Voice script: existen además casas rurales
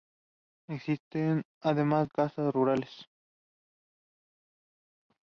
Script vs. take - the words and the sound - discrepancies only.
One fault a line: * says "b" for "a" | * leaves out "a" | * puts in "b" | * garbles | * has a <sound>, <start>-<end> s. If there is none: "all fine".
all fine